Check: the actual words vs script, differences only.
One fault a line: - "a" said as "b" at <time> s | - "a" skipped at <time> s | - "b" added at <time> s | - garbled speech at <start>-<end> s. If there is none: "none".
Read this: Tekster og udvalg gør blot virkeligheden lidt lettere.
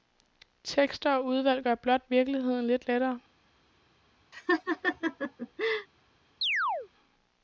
none